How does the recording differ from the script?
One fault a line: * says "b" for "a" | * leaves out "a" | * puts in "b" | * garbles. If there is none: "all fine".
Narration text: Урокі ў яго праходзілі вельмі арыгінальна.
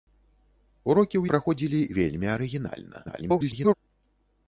* leaves out "яго"
* garbles